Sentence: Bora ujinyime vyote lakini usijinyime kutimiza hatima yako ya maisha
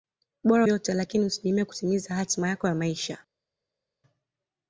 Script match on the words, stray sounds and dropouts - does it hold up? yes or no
no